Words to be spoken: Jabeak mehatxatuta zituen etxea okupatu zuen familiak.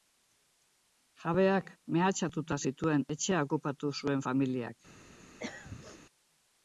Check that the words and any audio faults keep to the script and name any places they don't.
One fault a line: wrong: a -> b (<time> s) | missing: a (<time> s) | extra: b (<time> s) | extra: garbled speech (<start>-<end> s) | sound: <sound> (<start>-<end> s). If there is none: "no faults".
sound: throat clearing (5.4-6.0 s)